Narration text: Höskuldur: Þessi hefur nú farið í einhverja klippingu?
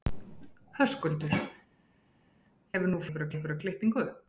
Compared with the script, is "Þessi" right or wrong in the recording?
wrong